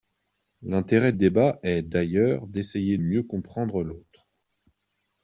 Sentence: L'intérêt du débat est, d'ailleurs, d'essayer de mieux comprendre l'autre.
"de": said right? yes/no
no